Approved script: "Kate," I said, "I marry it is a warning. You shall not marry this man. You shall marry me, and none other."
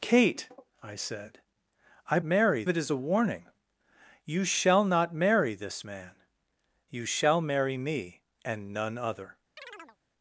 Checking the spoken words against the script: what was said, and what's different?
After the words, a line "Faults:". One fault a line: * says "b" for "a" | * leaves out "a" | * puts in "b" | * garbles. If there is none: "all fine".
"Kate," I said, "I marry it is a warning. You shall not marry this man. You shall marry me, and none other."
Faults:
all fine